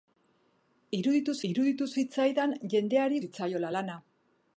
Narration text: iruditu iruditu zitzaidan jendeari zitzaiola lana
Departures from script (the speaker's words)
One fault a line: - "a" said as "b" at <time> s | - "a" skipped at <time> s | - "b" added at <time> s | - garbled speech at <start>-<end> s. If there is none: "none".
none